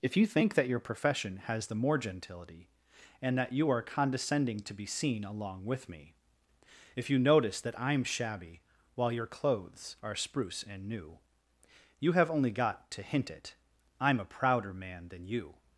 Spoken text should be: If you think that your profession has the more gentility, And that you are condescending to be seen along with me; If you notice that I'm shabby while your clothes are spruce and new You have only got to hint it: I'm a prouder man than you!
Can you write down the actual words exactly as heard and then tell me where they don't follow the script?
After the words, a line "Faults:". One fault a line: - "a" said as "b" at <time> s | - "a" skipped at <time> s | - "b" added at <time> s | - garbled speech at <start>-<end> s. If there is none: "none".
If you think that your profession has the more gentility, And that you are condescending to be seen along with me; If you notice that I'm shabby while your clothes are spruce and new You have only got to hint it: I'm a prouder man than you!
Faults:
none